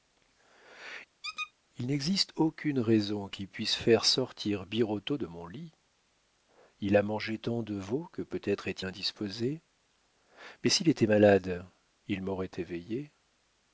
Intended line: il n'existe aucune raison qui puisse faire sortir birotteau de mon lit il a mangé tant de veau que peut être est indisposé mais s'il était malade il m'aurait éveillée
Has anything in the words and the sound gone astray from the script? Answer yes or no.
yes